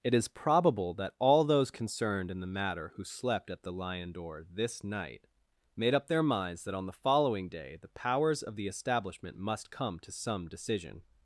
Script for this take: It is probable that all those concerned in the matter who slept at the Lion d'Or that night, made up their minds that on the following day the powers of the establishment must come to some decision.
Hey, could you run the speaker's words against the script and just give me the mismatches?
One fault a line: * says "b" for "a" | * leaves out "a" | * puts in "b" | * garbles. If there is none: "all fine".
* says "this" for "that"